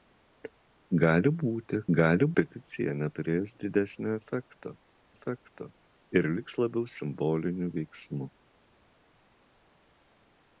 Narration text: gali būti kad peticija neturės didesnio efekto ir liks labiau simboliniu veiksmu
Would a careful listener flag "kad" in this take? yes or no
yes